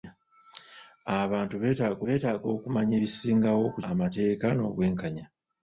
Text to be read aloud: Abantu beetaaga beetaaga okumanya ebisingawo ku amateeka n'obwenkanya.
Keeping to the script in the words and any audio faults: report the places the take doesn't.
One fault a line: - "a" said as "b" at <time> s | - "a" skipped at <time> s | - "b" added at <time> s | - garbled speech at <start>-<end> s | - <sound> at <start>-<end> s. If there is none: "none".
none